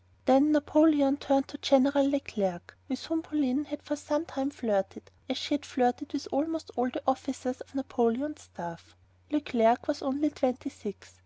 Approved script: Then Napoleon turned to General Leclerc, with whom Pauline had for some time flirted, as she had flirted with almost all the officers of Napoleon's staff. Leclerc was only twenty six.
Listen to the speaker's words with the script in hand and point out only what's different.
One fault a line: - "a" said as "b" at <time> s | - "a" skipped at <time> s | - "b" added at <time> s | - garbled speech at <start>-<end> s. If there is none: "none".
none